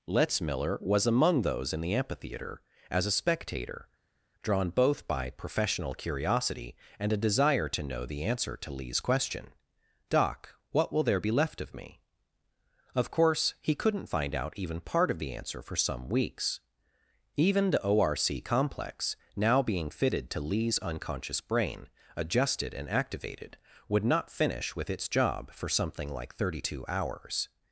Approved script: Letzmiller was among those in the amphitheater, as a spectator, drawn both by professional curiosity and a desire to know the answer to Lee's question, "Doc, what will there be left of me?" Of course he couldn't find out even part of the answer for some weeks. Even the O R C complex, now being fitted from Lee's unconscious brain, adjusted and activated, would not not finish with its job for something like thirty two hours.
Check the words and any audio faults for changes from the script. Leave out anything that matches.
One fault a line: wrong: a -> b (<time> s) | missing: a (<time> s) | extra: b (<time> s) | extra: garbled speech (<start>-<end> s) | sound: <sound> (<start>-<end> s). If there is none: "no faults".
wrong: from -> to (20.3 s)
missing: not (24.3 s)